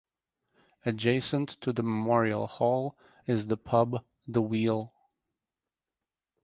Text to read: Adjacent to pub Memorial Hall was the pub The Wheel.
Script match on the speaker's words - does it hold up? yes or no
no